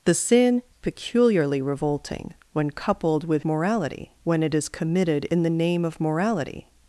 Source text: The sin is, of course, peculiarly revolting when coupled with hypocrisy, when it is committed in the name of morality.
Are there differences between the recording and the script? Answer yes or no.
yes